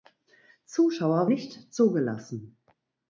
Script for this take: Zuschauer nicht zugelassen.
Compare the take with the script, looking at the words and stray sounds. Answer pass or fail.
pass